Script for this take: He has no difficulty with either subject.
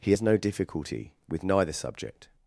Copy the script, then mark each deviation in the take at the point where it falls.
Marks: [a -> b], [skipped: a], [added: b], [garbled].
He has no difficulty with [either -> neither] subject.